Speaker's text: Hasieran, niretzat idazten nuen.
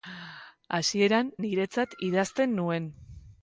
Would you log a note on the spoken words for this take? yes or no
no